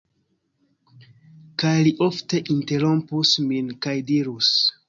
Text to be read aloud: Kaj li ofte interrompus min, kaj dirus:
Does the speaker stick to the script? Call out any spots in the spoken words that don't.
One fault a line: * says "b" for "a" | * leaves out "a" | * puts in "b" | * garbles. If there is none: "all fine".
all fine